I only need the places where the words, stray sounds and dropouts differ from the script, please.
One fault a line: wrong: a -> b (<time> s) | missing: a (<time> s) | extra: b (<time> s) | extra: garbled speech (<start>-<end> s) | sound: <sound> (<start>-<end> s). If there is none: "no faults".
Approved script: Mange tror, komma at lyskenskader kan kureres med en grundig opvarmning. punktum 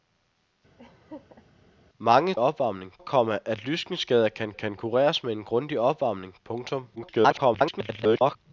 sound: laugh (0.8-1.4 s)
wrong: tror -> opvarmning (2.4 s)
extra: kan (4.5 s)
extra: garbled speech (7.0-8.4 s)